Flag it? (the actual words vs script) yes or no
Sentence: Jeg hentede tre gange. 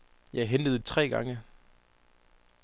no